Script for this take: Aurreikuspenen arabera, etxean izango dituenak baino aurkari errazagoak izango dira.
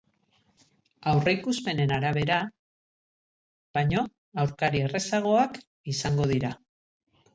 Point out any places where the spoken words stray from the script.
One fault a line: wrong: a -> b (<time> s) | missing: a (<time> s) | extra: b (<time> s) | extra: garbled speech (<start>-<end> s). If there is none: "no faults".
missing: etxean izango dituenak (2.4 s)